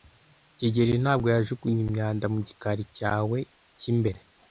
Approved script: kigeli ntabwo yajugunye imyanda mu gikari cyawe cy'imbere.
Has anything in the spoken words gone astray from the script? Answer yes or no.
no